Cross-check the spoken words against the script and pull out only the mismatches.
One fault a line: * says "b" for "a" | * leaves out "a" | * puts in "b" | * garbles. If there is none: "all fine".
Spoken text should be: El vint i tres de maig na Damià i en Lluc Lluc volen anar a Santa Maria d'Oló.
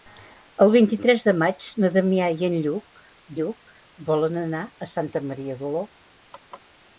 all fine